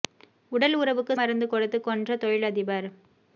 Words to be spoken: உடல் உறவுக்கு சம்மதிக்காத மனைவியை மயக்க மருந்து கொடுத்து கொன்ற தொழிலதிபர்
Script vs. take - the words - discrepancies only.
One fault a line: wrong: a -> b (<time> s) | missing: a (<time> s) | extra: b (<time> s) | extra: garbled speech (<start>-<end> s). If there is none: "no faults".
missing: சம்மதிக்காத மனைவியை மயக்க (1.1 s)